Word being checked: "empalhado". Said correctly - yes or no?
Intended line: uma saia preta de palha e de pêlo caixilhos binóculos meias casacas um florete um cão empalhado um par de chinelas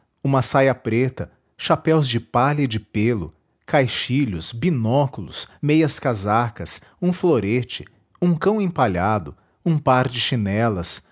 yes